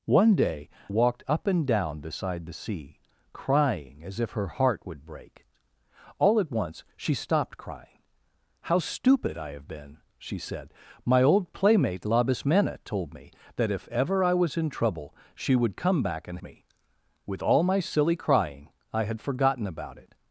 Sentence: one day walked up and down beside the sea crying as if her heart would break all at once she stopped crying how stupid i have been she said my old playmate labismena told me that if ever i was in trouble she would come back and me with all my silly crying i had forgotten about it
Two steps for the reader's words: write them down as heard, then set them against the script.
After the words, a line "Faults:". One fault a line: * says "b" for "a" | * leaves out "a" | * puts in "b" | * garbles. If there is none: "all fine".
one day walked up and down beside the sea crying as if her heart would break all at once she stopped crying how stupid i have been she said my old playmate labismena told me that if ever i was in trouble she would come back and me with all my silly crying i had forgotten about it
Faults:
all fine